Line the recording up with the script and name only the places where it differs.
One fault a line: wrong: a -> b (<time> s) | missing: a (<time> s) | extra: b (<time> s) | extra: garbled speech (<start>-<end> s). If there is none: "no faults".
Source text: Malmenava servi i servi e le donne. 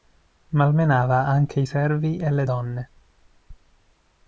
wrong: servi -> anche (1.3 s)